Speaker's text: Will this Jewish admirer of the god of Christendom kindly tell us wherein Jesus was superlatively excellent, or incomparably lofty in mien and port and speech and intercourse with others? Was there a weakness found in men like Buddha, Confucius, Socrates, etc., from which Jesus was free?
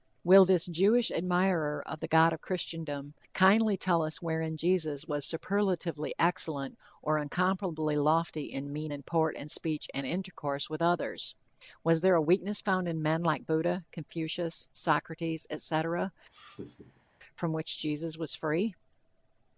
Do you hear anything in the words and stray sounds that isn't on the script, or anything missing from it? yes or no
yes